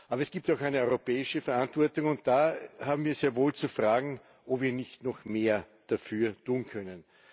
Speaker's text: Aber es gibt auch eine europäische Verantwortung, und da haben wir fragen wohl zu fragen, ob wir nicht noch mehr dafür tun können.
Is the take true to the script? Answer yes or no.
no